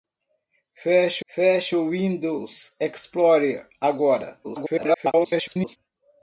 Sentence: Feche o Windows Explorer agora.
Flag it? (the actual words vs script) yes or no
yes